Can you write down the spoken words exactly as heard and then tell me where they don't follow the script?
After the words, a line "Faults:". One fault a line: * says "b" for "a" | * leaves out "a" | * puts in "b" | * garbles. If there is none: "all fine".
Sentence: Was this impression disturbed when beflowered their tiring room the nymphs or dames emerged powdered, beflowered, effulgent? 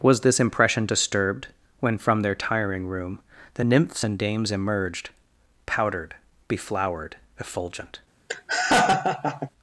Was this impression disturbed when from their tiring room the nymphs and dames emerged powdered, beflowered, effulgent?
Faults:
* says "from" for "beflowered"
* says "and" for "or"